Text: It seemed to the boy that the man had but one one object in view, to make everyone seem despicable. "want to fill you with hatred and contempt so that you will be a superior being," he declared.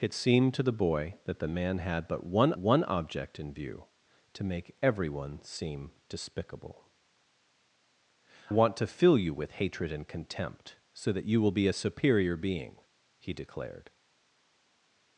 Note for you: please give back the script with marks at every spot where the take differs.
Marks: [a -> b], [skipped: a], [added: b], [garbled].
It seemed to the boy that the man had but one one object in view, to make everyone seem despicable. "want to fill you with hatred and contempt so that you will be a superior being," he declared.